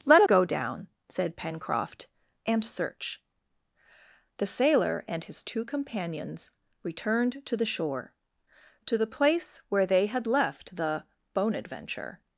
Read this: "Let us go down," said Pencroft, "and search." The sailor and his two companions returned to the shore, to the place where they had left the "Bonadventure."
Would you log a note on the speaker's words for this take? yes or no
yes